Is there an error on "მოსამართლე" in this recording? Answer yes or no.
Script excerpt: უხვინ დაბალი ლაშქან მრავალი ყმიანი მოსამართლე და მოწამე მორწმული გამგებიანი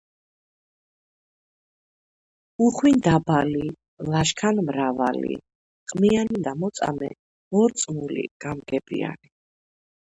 yes